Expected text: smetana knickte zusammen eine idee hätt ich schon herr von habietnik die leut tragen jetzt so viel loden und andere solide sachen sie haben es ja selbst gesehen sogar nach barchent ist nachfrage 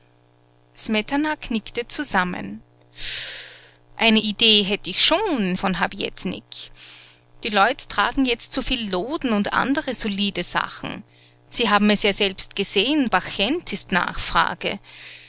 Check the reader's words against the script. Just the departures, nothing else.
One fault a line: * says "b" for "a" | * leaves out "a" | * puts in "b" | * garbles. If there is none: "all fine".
* leaves out "herr"
* leaves out "sogar nach"